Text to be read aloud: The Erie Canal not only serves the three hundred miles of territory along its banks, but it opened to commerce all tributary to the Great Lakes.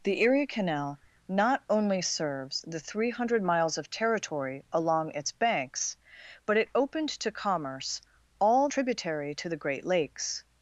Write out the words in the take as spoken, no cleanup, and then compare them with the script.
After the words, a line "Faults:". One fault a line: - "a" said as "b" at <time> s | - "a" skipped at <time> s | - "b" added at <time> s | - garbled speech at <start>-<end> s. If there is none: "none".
The Erie Canal not only serves the three hundred miles of territory along its banks, but it opened to commerce all tributary to the Great Lakes.
Faults:
none